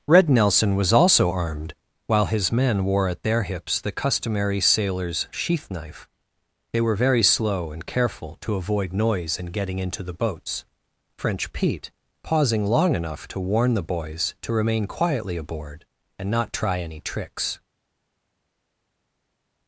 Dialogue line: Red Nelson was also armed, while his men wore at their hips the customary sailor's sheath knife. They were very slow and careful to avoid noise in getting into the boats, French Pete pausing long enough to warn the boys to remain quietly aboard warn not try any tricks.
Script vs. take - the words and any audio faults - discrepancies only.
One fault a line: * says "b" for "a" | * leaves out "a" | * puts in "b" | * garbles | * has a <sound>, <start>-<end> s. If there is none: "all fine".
* says "and" for "warn"